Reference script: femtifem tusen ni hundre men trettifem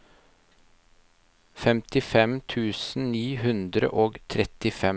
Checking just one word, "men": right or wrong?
wrong